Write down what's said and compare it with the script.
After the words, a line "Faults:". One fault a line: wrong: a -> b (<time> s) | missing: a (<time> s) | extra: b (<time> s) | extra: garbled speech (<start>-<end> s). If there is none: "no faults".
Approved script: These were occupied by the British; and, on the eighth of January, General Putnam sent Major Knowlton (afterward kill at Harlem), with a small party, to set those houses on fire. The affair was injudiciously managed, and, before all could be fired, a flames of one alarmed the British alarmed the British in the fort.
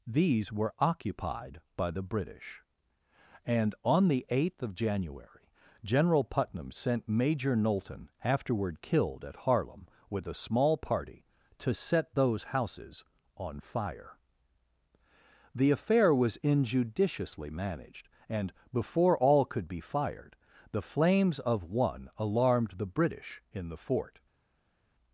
These were occupied by the British; and, on the eighth of January, General Putnam sent Major Knowlton (afterward killed at Harlem), with a small party, to set those houses on fire. The affair was injudiciously managed, and, before all could be fired, the flames of one alarmed the British in the fort.
Faults:
wrong: kill -> killed (8.8 s)
wrong: a -> the (20.7 s)
missing: alarmed the British (23.4 s)